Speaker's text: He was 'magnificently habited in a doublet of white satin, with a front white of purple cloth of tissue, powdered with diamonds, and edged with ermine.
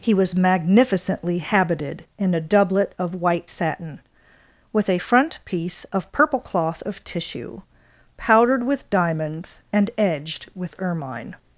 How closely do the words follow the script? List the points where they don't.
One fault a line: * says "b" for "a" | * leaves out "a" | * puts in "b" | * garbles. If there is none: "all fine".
* says "piece" for "white"